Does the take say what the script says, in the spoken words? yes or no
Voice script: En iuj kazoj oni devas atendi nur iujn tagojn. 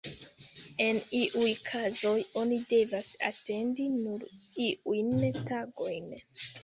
yes